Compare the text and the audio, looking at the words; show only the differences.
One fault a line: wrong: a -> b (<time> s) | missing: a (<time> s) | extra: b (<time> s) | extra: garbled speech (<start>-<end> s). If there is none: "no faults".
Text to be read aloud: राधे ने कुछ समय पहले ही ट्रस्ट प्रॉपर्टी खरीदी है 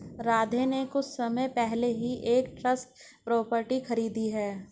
extra: एक (2.3 s)